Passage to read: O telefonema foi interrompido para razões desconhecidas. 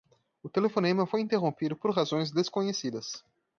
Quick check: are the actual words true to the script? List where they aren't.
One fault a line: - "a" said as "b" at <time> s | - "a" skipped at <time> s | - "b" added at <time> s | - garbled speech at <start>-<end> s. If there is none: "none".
- "para" said as "por" at 1.8 s